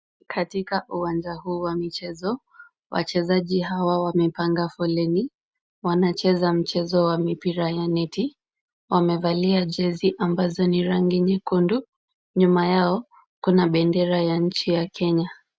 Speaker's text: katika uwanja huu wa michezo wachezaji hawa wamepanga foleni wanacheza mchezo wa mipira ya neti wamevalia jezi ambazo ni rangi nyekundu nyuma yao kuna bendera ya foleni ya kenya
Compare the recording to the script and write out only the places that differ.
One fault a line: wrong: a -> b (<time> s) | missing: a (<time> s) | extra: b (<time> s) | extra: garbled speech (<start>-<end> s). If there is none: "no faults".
wrong: foleni -> nchi (14.4 s)